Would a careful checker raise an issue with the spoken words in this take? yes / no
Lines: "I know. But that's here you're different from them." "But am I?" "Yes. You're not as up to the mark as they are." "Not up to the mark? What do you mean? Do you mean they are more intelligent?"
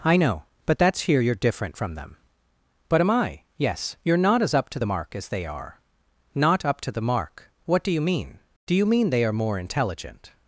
no